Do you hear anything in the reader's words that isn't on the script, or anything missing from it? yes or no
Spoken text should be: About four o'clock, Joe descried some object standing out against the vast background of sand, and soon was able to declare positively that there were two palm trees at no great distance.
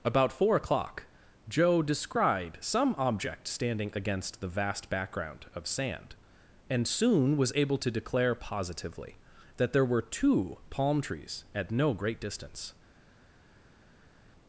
yes